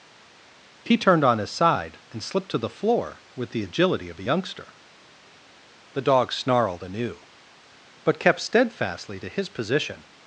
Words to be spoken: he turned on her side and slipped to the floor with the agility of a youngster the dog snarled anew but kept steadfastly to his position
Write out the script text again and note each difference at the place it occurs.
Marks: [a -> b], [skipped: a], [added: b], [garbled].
he turned on [her -> his] side and slipped to the floor with the agility of a youngster the dog snarled anew but kept steadfastly to his position